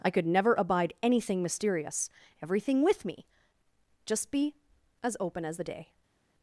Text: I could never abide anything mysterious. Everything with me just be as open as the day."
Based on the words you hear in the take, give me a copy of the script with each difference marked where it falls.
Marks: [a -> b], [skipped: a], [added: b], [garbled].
I could never abide anything mysterious. Everything with me just be as open as the day."